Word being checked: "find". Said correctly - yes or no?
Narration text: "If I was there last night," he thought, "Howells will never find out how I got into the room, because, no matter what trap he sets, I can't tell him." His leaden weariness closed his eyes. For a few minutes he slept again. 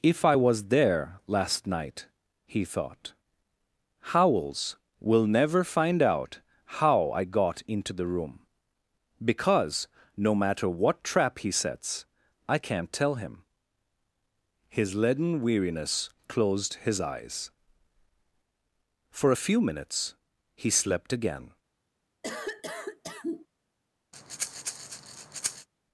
yes